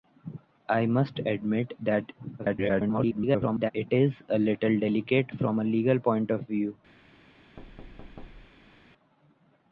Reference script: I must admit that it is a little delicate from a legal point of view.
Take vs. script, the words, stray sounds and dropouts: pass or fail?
fail